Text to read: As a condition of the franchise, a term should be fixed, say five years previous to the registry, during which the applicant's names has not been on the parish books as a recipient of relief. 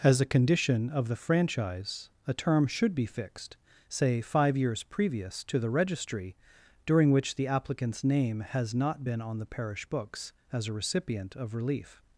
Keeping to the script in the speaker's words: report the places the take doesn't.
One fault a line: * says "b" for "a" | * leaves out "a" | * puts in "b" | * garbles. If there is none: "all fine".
* says "name" for "names"